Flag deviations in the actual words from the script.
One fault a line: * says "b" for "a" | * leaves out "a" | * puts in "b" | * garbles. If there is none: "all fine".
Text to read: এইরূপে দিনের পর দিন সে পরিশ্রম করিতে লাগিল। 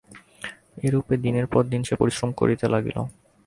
all fine